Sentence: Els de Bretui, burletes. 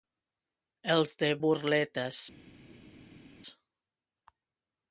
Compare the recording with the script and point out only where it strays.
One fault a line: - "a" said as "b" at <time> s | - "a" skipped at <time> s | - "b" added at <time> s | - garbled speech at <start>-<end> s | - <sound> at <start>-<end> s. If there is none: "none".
- "Bretui" skipped at 1.3 s